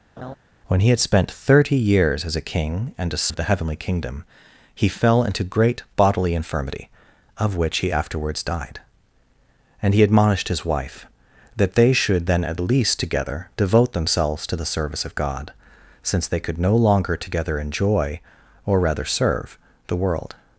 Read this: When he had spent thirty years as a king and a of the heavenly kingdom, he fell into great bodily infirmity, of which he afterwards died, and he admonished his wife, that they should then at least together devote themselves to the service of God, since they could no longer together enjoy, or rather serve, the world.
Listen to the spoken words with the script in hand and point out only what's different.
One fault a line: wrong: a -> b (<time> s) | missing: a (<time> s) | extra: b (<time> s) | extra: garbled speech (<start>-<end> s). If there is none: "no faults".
no faults